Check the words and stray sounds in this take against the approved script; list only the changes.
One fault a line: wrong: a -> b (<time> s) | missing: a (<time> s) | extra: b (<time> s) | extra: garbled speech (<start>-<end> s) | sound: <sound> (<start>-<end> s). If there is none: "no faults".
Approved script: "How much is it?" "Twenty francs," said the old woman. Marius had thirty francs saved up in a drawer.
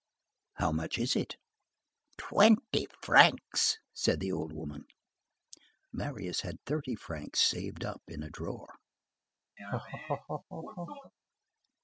sound: laugh (9.6-11.1 s)